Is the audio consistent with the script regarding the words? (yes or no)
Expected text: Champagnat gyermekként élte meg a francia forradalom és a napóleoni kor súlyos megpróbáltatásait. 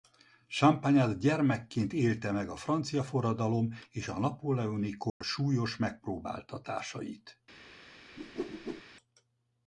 yes